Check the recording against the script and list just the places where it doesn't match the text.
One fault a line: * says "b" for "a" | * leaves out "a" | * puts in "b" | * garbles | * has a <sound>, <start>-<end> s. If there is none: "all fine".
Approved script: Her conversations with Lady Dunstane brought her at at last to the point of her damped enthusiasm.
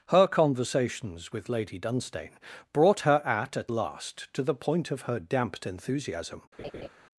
* has a laugh, 6.6-6.9 s